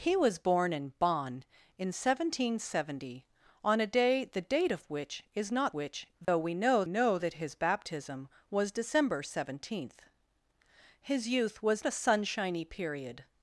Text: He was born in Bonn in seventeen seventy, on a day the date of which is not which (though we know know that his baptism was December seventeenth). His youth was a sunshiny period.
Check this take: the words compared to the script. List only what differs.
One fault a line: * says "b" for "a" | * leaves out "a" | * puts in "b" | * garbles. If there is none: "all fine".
all fine